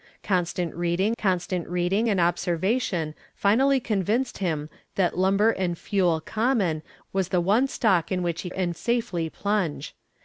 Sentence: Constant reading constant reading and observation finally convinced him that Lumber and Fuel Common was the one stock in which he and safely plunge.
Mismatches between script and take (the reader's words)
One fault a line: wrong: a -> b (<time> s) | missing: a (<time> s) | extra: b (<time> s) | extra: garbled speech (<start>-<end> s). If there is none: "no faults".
no faults